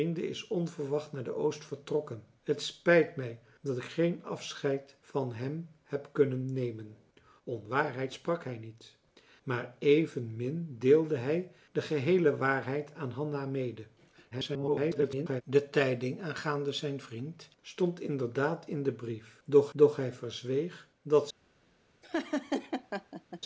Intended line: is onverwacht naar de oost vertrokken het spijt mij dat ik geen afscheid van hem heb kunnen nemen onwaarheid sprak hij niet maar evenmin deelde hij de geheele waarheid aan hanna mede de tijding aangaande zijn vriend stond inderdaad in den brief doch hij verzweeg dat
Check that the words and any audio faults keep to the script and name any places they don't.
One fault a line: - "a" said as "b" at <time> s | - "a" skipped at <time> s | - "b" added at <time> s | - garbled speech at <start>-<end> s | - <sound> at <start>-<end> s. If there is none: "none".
- garbled speech at 14.3-15.4 s
- "doch" added at 19.7 s
- laugh at 22.0-23.4 s